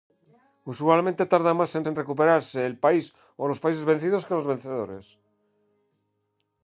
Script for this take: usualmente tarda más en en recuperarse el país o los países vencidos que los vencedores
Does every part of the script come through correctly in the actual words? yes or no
yes